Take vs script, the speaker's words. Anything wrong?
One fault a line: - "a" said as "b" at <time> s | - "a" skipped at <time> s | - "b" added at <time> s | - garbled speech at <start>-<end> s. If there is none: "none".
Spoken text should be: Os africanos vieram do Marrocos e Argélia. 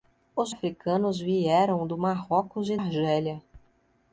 none